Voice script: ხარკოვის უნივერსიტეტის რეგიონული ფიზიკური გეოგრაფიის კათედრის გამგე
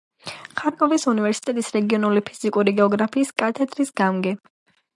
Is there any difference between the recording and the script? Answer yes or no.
no